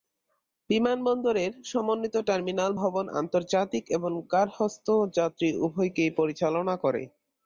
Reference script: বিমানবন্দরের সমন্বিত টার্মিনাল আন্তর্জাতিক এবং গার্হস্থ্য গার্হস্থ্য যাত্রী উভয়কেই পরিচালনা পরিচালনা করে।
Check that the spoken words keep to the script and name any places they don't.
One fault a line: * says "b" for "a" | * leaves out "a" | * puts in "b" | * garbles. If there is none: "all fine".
* puts in "ভবন"
* leaves out "গার্হস্থ্য"
* leaves out "পরিচালনা"